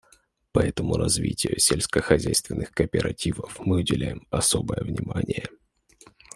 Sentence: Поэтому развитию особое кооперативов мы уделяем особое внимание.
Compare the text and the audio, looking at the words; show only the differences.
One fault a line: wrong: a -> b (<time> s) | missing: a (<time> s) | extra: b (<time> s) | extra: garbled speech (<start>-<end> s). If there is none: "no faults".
wrong: особое -> сельскохозяйственных (1.6 s)